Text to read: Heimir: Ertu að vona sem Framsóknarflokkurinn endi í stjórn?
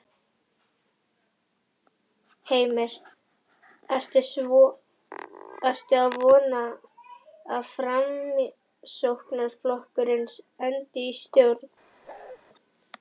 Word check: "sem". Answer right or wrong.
wrong